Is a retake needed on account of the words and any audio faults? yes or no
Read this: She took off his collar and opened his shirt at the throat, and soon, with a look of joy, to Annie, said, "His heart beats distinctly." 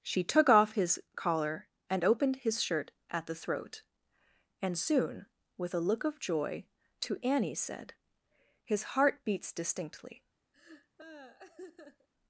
yes